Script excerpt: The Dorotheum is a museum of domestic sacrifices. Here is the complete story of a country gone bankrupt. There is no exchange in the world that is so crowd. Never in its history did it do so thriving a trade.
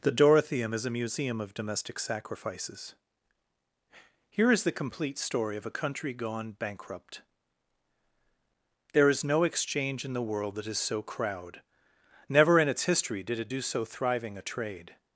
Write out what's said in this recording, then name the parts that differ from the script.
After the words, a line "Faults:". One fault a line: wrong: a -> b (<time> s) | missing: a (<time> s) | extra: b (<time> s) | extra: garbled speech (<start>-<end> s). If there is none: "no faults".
The Dorotheum is a museum of domestic sacrifices. Here is the complete story of a country gone bankrupt. There is no exchange in the world that is so crowd. Never in its history did it do so thriving a trade.
Faults:
no faults